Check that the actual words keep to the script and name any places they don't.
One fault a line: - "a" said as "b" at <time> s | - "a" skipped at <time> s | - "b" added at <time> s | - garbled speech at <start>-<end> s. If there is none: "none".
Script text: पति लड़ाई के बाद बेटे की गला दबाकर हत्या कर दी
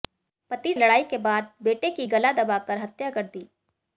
none